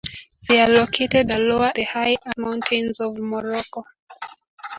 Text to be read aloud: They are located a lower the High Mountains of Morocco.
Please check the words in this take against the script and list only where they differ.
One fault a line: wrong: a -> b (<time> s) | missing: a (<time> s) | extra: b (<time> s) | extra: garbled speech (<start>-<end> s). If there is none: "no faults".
no faults